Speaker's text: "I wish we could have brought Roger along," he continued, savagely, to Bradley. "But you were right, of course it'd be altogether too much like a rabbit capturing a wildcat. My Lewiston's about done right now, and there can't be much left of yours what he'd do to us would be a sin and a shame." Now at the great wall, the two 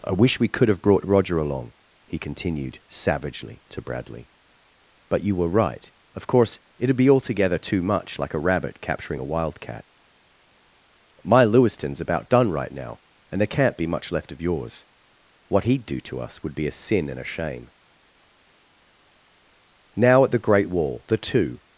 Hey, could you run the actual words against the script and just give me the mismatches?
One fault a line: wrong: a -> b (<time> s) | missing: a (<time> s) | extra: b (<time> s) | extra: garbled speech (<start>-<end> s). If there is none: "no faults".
no faults